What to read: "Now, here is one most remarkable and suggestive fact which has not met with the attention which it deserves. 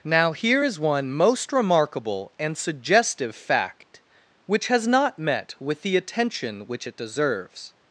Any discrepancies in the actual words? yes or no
no